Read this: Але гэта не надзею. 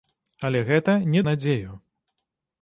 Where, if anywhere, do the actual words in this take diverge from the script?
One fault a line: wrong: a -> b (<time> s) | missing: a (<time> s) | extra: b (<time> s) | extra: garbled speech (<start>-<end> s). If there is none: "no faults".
no faults